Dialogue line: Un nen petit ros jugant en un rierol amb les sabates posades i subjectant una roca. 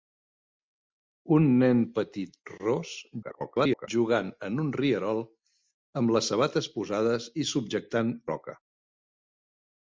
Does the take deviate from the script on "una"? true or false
true